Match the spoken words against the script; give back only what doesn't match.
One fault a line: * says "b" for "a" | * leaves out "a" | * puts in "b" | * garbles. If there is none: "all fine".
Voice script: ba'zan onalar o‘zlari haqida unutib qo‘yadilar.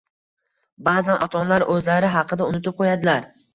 * puts in "ota"